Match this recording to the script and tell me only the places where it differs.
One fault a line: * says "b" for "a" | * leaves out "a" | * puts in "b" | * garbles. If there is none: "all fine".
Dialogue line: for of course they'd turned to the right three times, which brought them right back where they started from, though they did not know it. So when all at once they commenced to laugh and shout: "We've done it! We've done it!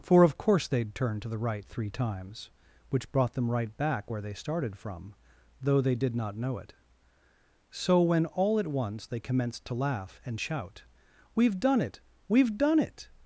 all fine